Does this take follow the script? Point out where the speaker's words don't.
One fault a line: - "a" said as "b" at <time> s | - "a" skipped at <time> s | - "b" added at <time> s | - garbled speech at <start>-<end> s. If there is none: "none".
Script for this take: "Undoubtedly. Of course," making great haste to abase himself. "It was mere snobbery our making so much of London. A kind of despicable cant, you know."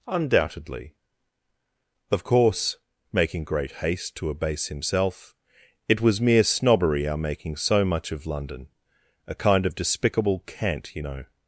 none